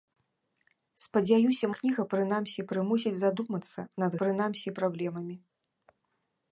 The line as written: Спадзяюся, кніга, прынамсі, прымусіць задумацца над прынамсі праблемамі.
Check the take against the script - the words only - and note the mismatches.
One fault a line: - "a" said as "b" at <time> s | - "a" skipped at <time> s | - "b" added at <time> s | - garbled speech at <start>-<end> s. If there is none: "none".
none